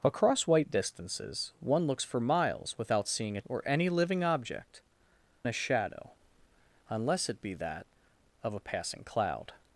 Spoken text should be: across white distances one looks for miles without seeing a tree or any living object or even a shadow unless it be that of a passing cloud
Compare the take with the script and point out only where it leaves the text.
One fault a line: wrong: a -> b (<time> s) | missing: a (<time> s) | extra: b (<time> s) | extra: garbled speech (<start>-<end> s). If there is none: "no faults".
missing: tree (3.5 s)
missing: or even (4.8 s)